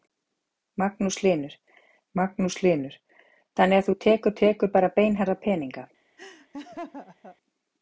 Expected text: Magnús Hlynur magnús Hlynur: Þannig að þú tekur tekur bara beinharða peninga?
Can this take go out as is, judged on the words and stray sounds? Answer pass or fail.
fail